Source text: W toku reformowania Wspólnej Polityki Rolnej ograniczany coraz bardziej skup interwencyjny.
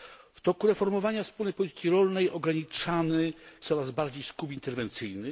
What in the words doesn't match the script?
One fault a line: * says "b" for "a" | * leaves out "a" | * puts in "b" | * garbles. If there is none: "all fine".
all fine